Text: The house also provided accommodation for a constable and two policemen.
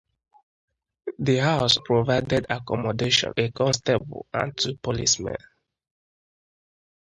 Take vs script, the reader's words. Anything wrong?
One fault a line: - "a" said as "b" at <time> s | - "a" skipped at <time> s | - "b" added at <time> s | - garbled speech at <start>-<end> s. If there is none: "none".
- "also" skipped at 1.8 s
- "for" skipped at 3.3 s